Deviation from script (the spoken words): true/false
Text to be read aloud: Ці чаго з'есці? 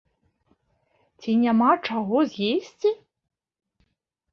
true